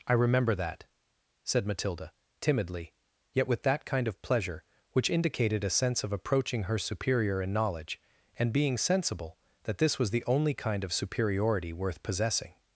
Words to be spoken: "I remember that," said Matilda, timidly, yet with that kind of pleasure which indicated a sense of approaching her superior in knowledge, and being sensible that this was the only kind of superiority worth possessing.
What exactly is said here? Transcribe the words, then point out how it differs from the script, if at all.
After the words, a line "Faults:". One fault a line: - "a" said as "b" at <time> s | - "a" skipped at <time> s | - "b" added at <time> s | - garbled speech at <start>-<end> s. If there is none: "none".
"I remember that," said Matilda, timidly, yet with that kind of pleasure which indicated a sense of approaching her superior in knowledge, and being sensible that this was the only kind of superiority worth possessing.
Faults:
none